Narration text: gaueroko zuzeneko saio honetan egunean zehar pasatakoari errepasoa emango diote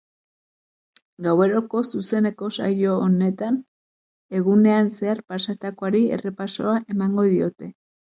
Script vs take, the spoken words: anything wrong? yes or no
no